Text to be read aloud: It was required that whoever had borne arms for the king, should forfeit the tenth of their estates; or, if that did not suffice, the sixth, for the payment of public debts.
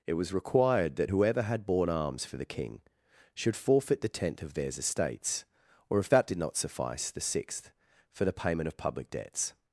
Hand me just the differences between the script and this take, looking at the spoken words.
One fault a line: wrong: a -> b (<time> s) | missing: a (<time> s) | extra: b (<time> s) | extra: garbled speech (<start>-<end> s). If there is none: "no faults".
wrong: their -> theirs (4.5 s)